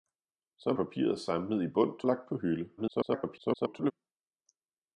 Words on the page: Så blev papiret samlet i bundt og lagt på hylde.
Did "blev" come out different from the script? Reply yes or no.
yes